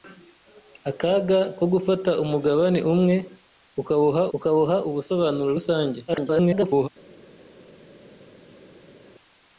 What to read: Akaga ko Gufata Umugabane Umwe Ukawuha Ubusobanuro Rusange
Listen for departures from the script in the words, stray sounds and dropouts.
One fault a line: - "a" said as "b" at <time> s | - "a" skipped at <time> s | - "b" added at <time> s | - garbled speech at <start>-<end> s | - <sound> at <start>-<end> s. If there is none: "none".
- "Ukawuha" added at 4.4 s
- garbled speech at 6.1-6.9 s